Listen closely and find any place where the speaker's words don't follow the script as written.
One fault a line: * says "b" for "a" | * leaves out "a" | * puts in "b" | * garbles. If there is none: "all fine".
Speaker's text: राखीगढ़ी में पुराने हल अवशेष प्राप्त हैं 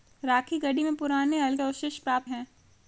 all fine